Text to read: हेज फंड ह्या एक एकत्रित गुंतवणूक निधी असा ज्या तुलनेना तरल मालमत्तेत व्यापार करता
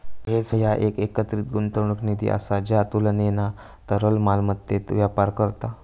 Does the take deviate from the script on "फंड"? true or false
true